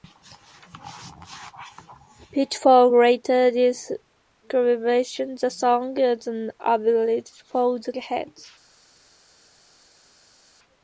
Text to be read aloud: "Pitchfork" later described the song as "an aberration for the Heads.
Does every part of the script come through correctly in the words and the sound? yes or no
yes